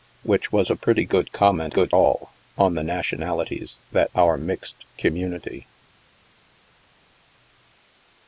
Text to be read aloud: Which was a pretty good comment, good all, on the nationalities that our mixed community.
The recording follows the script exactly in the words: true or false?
true